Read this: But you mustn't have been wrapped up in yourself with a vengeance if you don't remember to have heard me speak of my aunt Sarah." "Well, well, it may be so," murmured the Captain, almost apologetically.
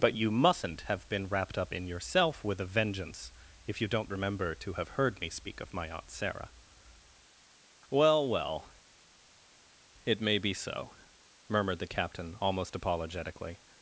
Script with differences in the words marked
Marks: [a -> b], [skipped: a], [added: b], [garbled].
But you mustn't have been wrapped up in yourself with a vengeance if you don't remember to have heard me speak of my aunt Sarah." "Well, well, it may be so," murmured the Captain, almost apologetically.